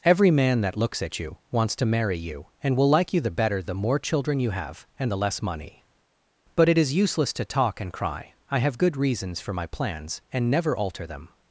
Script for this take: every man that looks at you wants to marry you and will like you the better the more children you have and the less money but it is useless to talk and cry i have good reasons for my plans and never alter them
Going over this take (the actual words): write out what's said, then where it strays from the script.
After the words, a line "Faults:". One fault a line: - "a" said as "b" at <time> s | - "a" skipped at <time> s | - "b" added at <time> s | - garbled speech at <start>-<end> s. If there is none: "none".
every man that looks at you wants to marry you and will like you the better the more children you have and the less money but it is useless to talk and cry i have good reasons for my plans and never alter them
Faults:
none